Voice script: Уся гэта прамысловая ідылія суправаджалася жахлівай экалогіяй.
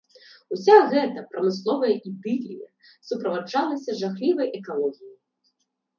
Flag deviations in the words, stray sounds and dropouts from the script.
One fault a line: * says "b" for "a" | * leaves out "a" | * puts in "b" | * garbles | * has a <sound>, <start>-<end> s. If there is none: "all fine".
all fine